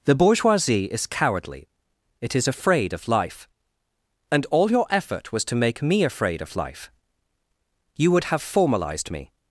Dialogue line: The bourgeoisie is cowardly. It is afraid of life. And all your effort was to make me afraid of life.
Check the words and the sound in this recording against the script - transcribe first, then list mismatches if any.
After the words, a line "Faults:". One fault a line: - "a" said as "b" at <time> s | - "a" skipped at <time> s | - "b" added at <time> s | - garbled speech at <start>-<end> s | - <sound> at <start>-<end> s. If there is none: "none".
The bourgeoisie is cowardly. It is afraid of life. And all your effort was to make me afraid of life. You would have formalized me
Faults:
- "You would have formalized me" added at 8.0 s